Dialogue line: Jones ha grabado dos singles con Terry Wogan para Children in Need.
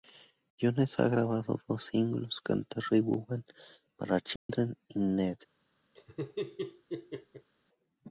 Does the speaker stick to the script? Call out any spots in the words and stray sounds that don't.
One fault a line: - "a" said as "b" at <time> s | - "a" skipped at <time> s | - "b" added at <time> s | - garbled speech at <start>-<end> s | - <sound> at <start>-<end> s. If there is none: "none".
- dropout at 4.4-4.5 s
- laugh at 5.9-7.5 s